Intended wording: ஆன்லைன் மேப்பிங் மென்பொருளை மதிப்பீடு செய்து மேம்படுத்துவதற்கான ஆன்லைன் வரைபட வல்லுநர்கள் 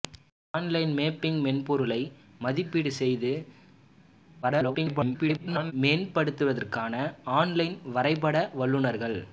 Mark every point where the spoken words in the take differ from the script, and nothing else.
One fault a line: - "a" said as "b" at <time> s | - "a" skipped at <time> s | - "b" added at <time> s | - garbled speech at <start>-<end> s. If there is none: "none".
- garbled speech at 4.4-5.7 s